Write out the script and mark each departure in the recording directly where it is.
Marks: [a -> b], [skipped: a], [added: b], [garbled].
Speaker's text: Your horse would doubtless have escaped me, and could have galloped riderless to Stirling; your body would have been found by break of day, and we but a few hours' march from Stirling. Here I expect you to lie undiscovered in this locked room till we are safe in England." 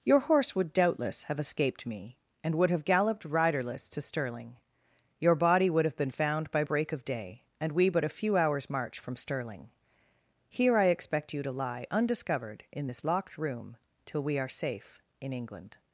Your horse would doubtless have escaped me, and [could -> would] have galloped riderless to Stirling; your body would have been found by break of day, and we but a few hours' march from Stirling. Here I expect you to lie undiscovered in this locked room till we are safe in England."